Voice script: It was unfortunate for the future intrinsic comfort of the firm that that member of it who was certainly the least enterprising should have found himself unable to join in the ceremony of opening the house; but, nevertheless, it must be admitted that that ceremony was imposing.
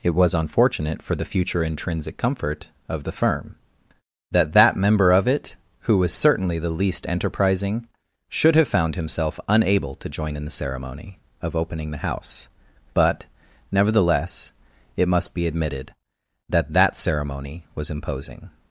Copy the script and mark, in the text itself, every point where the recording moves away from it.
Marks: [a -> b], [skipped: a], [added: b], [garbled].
It was unfortunate for the future intrinsic comfort of the firm that that member of it who was certainly the least enterprising should have found himself unable to join in the ceremony of opening the house; but, nevertheless, it must be admitted that that ceremony was imposing.